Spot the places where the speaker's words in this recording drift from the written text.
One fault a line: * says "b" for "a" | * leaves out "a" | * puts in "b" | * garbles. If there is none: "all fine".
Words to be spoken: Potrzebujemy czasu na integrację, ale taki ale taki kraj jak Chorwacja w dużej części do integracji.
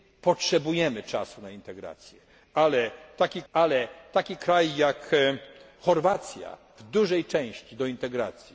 all fine